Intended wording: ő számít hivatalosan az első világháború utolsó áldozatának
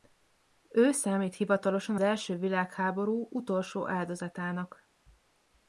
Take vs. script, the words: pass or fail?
fail